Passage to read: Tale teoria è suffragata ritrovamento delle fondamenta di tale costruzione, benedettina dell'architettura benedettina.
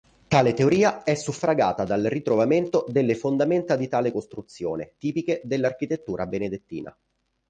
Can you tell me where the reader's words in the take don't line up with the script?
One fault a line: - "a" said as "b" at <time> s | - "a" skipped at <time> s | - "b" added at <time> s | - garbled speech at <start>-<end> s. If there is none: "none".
- "dal" added at 1.8 s
- "benedettina" said as "tipiche" at 5.0 s